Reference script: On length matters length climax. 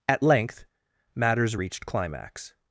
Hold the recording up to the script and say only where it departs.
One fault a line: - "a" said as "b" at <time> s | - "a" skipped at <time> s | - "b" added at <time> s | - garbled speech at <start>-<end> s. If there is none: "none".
- "On" said as "At" at 0.1 s
- "length" said as "reached" at 1.5 s